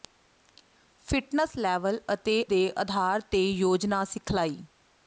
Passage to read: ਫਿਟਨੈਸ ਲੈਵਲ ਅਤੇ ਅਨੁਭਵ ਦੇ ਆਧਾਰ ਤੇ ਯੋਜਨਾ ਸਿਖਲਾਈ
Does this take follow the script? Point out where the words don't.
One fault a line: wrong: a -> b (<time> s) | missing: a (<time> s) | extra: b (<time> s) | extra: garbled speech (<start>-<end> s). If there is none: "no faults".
missing: ਅਨੁਭਵ (2.3 s)